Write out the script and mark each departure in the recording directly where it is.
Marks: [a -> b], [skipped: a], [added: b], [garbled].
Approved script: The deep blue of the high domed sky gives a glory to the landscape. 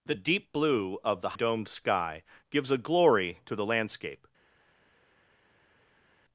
The deep blue of the [skipped: high] domed sky gives a glory to the landscape.